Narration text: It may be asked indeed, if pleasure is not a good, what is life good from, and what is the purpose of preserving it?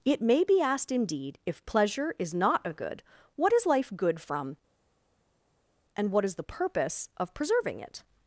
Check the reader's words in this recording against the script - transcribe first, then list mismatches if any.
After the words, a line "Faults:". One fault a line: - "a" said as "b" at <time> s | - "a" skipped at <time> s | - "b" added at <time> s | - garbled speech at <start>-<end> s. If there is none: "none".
It may be asked indeed, if pleasure is not a good, what is life good from, and what is the purpose of preserving it?
Faults:
none